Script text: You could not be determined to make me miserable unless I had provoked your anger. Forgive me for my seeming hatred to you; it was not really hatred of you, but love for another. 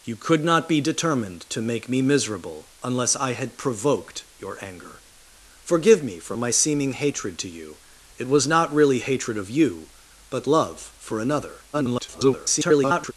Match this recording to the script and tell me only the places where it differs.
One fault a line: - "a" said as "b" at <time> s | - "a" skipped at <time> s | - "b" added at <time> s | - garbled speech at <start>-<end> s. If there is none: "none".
- garbled speech at 11.7-13.1 s